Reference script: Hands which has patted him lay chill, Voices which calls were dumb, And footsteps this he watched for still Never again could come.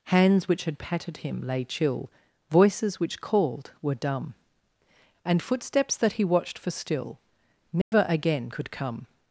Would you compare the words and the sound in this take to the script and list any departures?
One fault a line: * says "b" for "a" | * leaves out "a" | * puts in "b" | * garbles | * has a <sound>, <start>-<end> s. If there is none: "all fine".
* says "had" for "has"
* says "called" for "calls"
* says "that" for "this"
* has a dropout, 7.8-7.9 s